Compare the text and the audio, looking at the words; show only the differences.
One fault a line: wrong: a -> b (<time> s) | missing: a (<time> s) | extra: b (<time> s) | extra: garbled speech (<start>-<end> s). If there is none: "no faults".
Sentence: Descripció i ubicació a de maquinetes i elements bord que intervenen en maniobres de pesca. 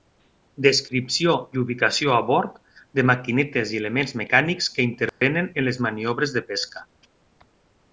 extra: bord (2.3 s)
wrong: bord -> mecànics (4.2 s)
extra: les (5.7 s)